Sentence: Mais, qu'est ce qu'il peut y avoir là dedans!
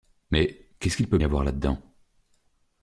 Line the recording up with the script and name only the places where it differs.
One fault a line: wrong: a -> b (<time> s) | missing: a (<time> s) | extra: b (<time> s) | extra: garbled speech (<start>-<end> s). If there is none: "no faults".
no faults